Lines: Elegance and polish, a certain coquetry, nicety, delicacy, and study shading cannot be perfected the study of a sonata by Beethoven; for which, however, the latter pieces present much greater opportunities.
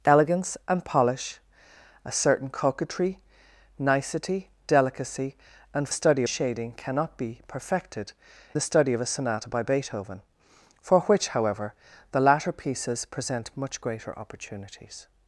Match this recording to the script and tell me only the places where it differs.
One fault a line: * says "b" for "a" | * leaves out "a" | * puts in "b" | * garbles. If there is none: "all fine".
all fine